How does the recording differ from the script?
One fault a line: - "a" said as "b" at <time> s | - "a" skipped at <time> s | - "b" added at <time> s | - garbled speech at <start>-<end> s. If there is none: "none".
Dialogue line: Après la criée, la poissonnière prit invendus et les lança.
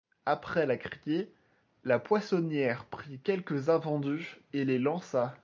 - "quelques" added at 3.2 s